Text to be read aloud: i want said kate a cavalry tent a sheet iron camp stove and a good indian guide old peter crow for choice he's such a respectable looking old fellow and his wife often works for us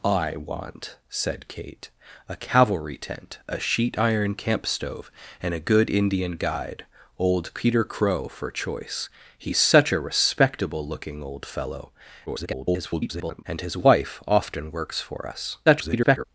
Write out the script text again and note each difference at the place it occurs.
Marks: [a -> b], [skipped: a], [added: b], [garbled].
i want said kate a cavalry tent a sheet iron camp stove and a good indian guide old peter crow for choice he's such a respectable looking old fellow [garbled] and his wife often works for us [garbled]